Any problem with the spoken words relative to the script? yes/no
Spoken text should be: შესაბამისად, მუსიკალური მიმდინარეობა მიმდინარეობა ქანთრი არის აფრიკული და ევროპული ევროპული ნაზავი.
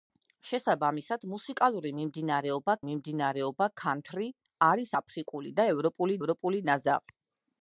no